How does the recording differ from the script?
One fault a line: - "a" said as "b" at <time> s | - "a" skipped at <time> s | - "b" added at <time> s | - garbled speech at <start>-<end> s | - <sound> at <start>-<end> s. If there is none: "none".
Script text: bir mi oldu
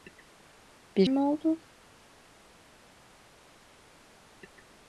none